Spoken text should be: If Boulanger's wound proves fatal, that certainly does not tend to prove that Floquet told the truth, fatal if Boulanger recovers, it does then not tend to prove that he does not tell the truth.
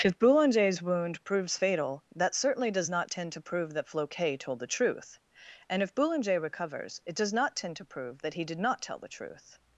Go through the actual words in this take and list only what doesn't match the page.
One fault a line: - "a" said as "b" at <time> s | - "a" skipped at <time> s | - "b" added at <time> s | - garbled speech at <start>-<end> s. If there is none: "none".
- "fatal" said as "and" at 5.7 s
- "then" skipped at 7.3 s
- "does" said as "did" at 8.4 s